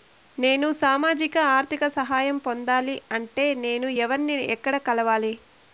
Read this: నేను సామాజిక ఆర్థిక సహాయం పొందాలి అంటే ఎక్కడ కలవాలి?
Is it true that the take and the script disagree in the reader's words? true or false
true